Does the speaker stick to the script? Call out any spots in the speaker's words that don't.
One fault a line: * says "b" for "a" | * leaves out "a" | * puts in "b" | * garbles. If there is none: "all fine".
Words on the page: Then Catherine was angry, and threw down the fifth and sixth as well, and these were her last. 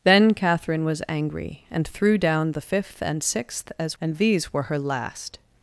* leaves out "well"